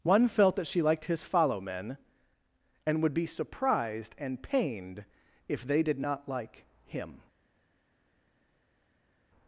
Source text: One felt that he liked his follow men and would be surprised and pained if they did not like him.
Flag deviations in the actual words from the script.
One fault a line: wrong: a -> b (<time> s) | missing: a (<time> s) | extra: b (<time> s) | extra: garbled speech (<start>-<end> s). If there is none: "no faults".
wrong: he -> she (0.7 s)